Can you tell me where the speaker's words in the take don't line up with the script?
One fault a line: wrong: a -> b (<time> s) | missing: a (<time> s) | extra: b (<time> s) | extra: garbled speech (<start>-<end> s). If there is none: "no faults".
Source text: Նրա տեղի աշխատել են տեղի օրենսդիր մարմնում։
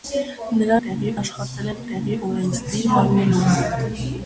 no faults